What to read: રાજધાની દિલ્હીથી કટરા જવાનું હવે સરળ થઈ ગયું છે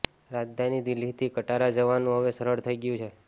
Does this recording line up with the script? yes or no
yes